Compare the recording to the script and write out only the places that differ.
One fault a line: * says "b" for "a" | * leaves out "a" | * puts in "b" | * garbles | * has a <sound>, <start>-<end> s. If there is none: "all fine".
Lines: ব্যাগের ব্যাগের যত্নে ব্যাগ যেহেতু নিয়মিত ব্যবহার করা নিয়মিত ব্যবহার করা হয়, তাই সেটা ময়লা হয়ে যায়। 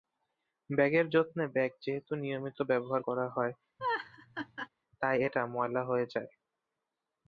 * leaves out "ব্যাগের"
* leaves out "নিয়মিত ব্যবহার করা"
* has a laugh, 3.8-4.7 s
* says "এটা" for "সেটা"